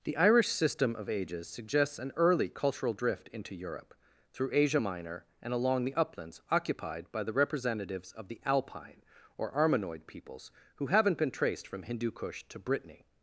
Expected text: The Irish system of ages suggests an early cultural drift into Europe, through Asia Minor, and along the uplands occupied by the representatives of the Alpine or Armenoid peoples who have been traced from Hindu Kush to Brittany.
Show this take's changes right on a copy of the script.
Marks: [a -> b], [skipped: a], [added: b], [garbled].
The Irish system of ages suggests an early cultural drift into Europe, through Asia Minor, and along the uplands occupied by the representatives of the Alpine or Armenoid peoples who [have -> haven't] been traced from Hindu Kush to Brittany.